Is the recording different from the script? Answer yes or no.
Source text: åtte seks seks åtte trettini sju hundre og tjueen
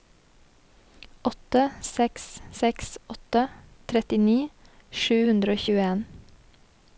no